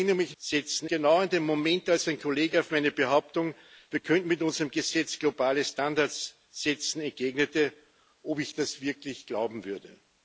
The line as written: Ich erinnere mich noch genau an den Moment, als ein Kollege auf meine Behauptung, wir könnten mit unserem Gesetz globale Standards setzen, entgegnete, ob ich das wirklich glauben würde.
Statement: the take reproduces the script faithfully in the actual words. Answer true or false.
false